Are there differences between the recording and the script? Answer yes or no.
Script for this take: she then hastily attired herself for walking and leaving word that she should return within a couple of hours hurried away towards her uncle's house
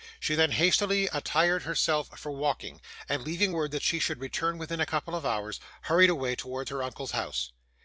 no